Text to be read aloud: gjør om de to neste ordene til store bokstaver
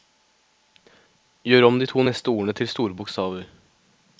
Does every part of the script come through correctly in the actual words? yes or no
yes